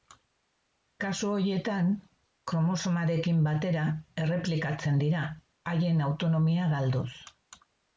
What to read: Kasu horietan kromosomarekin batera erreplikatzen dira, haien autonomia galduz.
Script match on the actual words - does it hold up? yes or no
yes